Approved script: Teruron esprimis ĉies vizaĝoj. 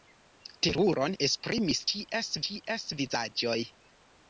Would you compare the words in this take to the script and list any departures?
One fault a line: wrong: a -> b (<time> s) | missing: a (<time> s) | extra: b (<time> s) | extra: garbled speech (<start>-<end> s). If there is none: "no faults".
extra: ĉies (2.5 s)